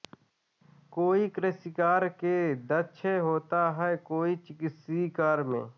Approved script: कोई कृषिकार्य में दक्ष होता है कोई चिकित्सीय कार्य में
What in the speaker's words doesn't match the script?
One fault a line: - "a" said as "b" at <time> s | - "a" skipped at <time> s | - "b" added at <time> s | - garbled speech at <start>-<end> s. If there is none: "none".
none